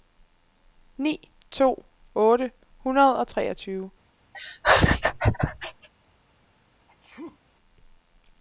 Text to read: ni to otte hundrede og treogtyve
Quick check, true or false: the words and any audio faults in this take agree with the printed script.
false